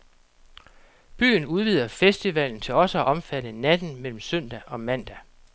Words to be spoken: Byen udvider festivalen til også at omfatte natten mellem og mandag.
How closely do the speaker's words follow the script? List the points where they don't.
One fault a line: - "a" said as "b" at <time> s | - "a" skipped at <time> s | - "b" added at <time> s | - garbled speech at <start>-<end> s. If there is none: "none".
- "søndag" added at 4.2 s